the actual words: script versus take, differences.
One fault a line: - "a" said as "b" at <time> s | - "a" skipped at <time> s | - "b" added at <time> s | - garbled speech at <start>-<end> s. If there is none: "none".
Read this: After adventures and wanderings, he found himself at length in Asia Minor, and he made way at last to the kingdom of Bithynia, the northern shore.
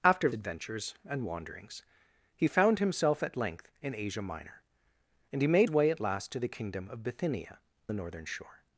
none